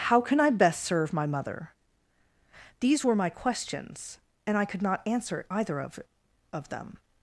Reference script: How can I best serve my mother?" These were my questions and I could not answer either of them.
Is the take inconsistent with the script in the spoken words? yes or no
yes